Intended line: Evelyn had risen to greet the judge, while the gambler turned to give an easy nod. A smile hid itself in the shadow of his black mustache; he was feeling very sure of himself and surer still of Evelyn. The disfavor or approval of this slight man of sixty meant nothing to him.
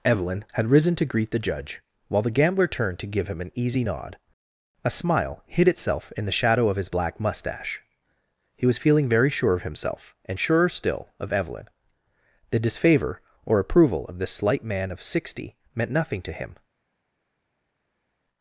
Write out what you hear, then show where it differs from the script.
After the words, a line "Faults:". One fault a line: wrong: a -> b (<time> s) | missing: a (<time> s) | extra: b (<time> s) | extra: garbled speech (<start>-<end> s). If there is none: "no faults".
Evelyn had risen to greet the judge, while the gambler turned to give him an easy nod. A smile hid itself in the shadow of his black mustache; he was feeling very sure of himself and surer still of Evelyn. The disfavor or approval of this slight man of sixty meant nothing to him.
Faults:
extra: him (3.3 s)